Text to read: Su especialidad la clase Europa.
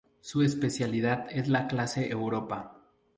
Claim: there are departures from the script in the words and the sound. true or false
true